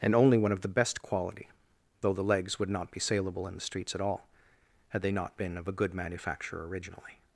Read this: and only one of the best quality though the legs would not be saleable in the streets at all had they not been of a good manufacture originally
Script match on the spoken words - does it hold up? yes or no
yes